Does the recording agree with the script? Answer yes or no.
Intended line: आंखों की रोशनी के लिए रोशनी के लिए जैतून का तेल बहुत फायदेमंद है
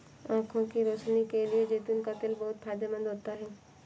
no